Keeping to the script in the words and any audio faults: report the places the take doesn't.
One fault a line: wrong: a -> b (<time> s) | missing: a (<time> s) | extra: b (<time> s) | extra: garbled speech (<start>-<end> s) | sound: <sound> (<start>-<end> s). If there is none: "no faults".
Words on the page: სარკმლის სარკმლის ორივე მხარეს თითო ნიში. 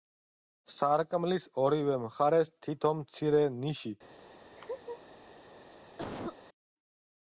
missing: სარკმლის (1.4 s)
extra: მცირე (3.0 s)
sound: laugh (4.6-5.0 s)
sound: cough (6.0-6.4 s)